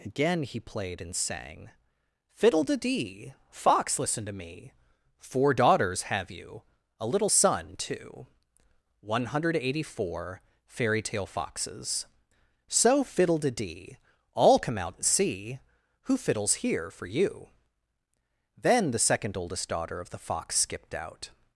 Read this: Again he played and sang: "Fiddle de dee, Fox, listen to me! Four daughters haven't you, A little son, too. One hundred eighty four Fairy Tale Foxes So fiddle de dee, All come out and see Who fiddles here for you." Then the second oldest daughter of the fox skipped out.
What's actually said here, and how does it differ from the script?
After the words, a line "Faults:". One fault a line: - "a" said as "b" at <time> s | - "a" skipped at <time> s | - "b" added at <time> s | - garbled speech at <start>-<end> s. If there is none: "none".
Again he played and sang: "Fiddle de dee, Fox, listen to me! Four daughters have you, A little son, too. One hundred eighty four Fairy Tale Foxes So fiddle de dee, All come out and see Who fiddles here for you." Then the second oldest daughter of the fox skipped out.
Faults:
- "haven't" said as "have" at 6.0 s